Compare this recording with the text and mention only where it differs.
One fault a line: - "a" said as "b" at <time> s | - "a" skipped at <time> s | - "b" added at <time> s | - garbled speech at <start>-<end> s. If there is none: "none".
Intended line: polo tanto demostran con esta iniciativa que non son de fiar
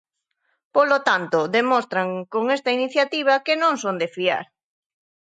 none